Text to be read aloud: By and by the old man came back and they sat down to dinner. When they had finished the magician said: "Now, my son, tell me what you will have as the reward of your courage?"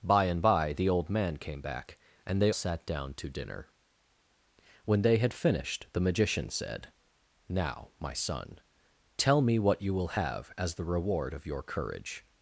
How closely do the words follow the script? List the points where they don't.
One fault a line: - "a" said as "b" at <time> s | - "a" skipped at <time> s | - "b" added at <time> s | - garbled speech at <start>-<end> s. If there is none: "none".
none